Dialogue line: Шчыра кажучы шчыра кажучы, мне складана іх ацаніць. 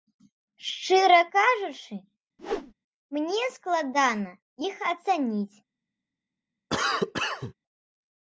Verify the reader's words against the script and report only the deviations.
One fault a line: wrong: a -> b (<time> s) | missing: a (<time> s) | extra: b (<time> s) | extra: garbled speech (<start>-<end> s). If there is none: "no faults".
missing: шчыра кажучы (2.0 s)